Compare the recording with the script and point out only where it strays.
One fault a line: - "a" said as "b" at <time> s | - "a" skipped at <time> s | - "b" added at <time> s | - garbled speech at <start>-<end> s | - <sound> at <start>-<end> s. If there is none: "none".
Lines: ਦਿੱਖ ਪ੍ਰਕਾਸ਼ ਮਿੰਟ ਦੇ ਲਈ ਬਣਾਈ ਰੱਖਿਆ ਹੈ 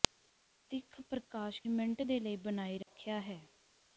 - dropout at 2.8-2.9 s